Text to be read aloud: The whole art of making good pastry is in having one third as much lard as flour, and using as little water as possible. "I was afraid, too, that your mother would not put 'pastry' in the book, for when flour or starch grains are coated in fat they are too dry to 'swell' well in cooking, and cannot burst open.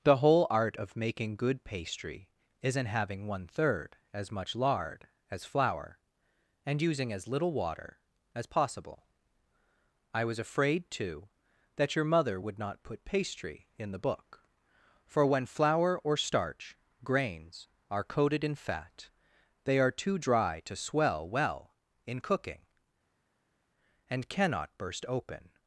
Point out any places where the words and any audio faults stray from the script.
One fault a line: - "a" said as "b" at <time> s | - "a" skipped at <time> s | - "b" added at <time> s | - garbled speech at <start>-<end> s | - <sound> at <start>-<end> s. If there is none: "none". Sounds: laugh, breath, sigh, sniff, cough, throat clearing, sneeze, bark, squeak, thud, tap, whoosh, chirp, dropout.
none